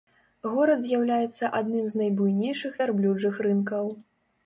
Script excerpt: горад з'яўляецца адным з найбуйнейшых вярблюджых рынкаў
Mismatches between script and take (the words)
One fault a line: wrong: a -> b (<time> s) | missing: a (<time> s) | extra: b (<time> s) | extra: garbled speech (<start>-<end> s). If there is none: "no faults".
no faults